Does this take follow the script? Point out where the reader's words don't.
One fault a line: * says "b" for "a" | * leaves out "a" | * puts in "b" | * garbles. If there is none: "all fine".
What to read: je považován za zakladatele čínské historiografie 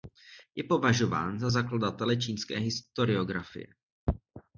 all fine